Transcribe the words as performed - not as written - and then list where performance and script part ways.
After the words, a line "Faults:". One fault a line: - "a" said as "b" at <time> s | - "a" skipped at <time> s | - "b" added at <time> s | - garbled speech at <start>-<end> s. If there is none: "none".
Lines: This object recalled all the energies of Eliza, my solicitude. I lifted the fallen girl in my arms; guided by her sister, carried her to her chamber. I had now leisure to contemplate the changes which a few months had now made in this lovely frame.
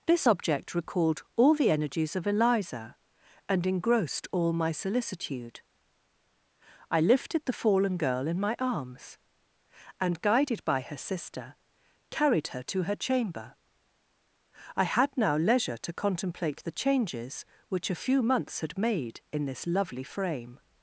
This object recalled all the energies of Eliza, and engrossed all my solicitude. I lifted the fallen girl in my arms; and, guided by her sister, carried her to her chamber. I had now leisure to contemplate the changes which a few months had made in this lovely frame.
Faults:
- "and engrossed all" added at 3.5 s
- "and" added at 10.0 s
- "now" skipped at 18.8 s